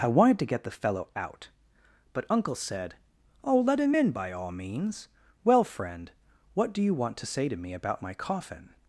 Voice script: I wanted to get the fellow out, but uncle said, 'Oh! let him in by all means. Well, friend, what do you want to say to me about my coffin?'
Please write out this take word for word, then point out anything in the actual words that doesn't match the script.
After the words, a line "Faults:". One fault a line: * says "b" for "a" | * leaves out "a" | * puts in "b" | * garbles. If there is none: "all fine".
I wanted to get the fellow out, but uncle said, 'Oh! let him in by all means. Well, friend, what do you want to say to me about my coffin?'
Faults:
all fine